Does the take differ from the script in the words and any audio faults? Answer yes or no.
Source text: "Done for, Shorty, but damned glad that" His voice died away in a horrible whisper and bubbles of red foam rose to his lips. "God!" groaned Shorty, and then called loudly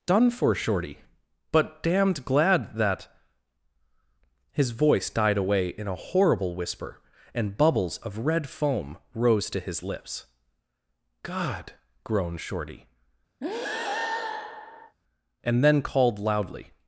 yes